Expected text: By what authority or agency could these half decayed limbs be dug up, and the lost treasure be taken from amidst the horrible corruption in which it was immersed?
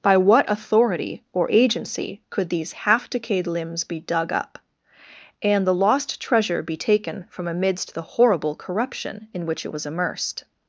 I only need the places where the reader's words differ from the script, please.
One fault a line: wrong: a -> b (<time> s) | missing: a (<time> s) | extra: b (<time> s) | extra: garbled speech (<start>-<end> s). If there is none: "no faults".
no faults